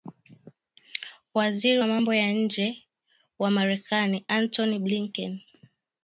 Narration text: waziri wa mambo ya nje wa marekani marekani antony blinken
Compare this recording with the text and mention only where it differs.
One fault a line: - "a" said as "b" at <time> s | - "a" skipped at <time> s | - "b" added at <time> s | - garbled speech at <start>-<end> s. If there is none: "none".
- "marekani" skipped at 4.2 s